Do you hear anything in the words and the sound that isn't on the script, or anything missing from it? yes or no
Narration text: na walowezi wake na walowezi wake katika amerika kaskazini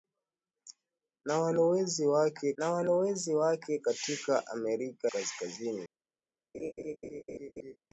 yes